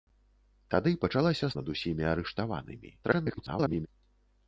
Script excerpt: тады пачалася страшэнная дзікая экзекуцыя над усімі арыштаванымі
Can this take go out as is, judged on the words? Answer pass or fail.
fail